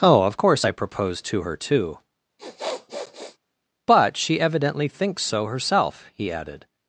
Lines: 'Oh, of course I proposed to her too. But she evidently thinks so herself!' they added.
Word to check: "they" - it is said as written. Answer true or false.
false